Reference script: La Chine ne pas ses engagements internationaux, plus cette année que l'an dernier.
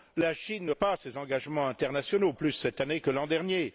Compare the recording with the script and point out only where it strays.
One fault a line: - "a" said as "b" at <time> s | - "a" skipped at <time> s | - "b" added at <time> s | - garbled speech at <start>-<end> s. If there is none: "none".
none